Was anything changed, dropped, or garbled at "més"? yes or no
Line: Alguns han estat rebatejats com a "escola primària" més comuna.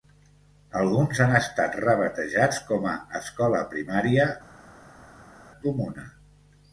yes